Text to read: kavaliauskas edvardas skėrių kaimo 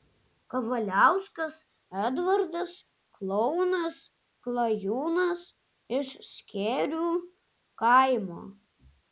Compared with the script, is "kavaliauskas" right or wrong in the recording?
right